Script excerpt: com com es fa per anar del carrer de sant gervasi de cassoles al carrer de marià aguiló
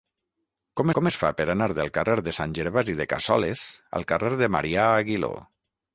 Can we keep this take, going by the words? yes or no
yes